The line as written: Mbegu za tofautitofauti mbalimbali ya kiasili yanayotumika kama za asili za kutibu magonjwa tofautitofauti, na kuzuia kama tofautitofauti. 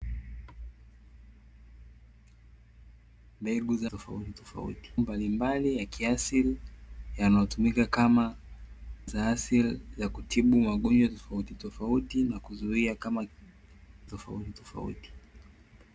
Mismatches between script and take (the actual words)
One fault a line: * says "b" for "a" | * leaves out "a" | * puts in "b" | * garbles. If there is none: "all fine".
all fine